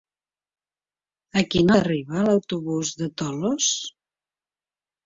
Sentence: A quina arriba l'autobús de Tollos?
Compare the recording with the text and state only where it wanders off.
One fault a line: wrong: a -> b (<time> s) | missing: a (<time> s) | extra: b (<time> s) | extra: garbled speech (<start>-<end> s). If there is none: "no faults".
no faults